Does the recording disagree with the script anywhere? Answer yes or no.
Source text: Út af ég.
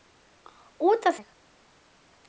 no